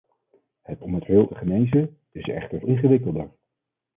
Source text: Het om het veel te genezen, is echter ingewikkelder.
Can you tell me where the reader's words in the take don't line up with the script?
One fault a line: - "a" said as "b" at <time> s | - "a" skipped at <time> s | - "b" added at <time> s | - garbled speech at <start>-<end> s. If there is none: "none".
none